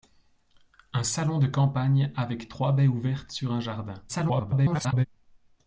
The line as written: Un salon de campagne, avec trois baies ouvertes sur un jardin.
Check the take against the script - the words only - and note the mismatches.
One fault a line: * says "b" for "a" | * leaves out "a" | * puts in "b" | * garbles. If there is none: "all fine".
* garbles